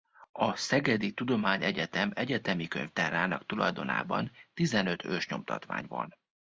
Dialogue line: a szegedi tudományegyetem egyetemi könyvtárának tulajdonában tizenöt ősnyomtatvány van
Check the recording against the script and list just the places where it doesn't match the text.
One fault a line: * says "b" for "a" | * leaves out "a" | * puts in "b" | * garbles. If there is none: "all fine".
all fine